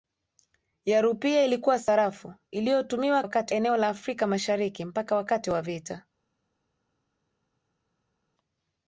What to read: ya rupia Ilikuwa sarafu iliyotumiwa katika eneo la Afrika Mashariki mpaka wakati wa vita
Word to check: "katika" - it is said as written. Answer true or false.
false